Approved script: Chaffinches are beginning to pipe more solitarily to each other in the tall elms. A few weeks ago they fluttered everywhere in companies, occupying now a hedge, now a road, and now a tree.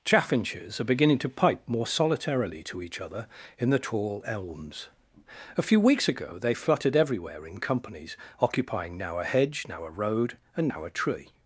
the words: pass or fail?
pass